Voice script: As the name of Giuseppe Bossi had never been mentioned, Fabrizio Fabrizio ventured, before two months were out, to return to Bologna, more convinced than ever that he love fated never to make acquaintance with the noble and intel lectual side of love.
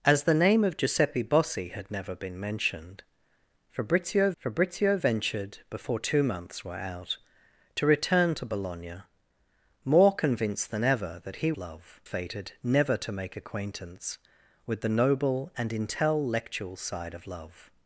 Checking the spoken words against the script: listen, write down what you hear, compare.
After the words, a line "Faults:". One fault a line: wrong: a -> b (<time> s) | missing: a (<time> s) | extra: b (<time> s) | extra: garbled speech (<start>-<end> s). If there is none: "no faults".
As the name of Giuseppe Bossi had never been mentioned, Fabrizio Fabrizio ventured, before two months were out, to return to Bologna, more convinced than ever that he love fated never to make acquaintance with the noble and intel lectual side of love.
Faults:
no faults